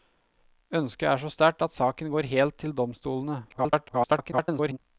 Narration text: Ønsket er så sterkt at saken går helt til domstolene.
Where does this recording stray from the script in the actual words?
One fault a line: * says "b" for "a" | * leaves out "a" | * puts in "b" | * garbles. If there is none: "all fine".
* garbles